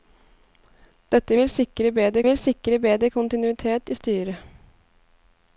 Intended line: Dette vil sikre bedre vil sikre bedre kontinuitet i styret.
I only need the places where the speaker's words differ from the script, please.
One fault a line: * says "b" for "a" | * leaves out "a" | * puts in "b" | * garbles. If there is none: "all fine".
all fine